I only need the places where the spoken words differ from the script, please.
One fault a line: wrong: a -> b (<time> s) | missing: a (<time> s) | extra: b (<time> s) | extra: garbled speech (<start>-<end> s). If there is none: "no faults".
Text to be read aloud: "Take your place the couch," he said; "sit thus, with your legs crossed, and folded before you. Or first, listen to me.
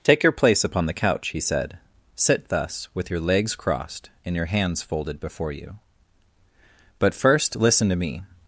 extra: upon (0.6 s)
extra: your hands (4.3 s)
wrong: Or -> But (7.0 s)